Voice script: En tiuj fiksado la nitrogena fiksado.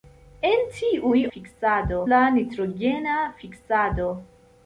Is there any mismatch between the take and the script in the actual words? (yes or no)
no